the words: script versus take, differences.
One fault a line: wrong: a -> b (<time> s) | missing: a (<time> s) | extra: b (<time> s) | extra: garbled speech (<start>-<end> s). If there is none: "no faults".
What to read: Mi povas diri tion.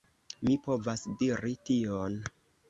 no faults